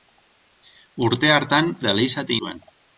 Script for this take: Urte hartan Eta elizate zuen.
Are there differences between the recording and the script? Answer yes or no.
no